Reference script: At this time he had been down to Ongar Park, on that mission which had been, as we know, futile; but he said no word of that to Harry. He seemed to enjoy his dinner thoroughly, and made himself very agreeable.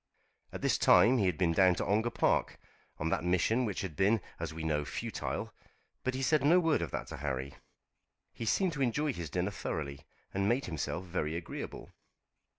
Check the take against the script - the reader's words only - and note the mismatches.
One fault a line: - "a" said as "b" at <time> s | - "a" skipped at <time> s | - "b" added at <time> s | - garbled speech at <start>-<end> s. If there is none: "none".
none